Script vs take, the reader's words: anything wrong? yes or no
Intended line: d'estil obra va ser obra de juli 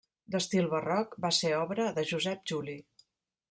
yes